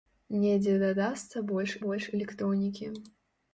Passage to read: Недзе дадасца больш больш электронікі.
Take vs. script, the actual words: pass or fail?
pass